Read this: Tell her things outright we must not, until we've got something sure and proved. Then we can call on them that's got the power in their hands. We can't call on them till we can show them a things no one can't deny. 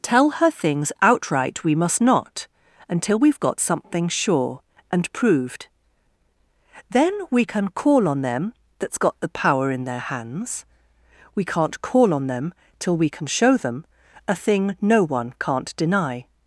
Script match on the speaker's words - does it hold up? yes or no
no